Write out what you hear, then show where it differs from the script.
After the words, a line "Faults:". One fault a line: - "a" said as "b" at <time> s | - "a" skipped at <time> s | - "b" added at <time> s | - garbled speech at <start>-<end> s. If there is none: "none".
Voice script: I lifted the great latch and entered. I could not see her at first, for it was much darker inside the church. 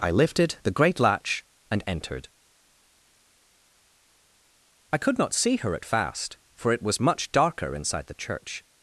I lifted the great latch and entered. I could not see her at fast, for it was much darker inside the church.
Faults:
- "first" said as "fast" at 5.8 s